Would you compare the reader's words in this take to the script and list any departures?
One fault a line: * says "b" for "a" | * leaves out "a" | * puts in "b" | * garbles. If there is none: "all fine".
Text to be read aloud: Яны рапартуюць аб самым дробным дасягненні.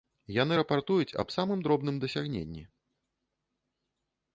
all fine